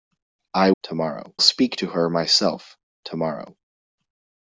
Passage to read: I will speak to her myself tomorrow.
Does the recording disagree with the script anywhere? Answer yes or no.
yes